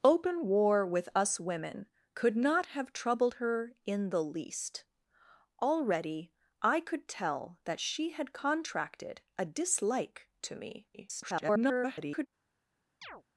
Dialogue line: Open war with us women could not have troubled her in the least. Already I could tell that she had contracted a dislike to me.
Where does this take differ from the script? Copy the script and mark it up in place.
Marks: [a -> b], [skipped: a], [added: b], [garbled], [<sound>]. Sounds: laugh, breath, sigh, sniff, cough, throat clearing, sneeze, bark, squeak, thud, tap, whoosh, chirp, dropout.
Open war with us women could not have troubled her in the least. Already I could tell that she had contracted a dislike to me. [garbled] [chirp]